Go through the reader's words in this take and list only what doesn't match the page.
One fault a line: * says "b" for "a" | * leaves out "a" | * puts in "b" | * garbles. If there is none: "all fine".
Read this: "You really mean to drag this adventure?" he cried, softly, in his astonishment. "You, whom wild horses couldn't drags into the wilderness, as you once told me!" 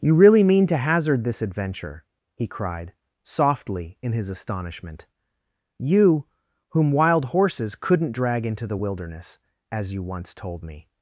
* says "hazard" for "drag"
* says "drag" for "drags"